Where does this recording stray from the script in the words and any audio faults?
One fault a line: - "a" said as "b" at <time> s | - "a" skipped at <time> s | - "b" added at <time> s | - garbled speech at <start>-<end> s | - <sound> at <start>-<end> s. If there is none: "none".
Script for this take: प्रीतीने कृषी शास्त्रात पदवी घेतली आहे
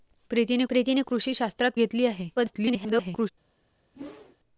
- "प्रीतीने" added at 0.7 s
- "पदवी" skipped at 1.7 s
- garbled speech at 2.4-3.3 s
- whoosh at 3.9-4.4 s